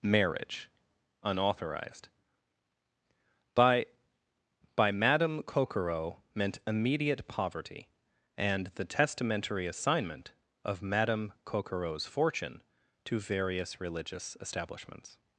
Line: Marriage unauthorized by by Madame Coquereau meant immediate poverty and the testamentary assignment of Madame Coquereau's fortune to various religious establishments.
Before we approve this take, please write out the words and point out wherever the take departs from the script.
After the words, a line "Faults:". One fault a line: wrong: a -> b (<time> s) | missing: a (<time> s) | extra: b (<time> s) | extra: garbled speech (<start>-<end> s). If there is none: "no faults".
Marriage unauthorized by by Madame Coquereau meant immediate poverty and the testamentary assignment of Madame Coquereau's fortune to various religious establishments.
Faults:
no faults